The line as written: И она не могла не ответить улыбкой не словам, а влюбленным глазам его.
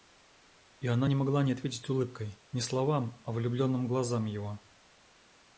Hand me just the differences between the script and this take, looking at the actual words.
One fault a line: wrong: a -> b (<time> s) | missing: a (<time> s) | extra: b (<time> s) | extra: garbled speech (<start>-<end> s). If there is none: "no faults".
no faults